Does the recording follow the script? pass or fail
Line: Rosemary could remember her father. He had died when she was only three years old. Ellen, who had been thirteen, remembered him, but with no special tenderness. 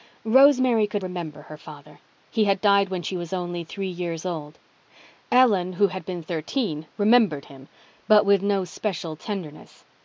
pass